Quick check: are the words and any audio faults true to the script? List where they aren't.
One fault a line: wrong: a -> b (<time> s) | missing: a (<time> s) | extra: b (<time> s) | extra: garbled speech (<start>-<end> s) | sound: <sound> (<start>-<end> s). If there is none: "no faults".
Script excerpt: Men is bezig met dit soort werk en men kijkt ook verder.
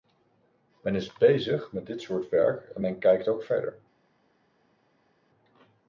no faults